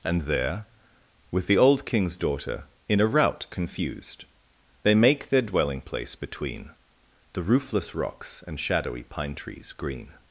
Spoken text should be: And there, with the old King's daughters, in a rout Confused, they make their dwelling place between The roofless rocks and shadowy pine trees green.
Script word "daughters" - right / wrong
wrong